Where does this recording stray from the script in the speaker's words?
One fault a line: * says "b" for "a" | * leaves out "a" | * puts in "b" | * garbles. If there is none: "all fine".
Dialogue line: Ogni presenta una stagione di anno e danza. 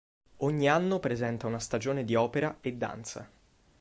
* puts in "anno"
* says "opera" for "anno"